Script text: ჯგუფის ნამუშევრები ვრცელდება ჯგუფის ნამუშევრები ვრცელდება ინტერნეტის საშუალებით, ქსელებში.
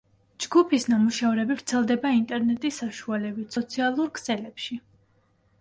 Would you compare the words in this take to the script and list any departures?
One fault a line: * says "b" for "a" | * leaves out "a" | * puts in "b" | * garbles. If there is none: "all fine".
* leaves out "ჯგუფის ნამუშევრები ვრცელდება"
* puts in "სოციალურ"